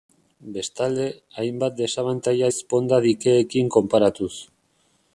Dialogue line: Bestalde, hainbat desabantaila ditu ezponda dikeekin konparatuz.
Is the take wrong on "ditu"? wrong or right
wrong